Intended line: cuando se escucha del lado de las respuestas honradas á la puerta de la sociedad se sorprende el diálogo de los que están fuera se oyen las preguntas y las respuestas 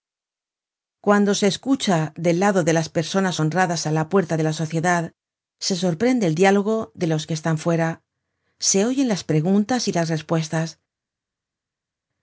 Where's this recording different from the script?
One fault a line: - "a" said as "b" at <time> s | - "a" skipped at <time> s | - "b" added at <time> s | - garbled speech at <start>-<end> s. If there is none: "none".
- "respuestas" said as "personas" at 3.0 s